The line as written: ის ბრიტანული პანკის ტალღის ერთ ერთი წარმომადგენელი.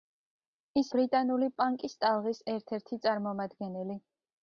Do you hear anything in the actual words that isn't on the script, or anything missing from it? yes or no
no